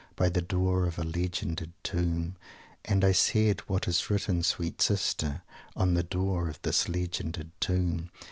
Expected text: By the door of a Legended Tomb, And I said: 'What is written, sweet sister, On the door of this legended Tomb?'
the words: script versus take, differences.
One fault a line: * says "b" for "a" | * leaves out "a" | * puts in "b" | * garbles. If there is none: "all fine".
all fine